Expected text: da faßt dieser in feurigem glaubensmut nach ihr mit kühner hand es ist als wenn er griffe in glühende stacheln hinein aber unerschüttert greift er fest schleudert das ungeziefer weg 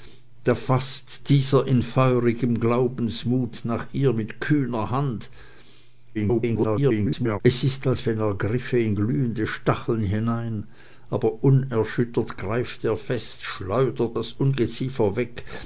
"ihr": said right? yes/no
yes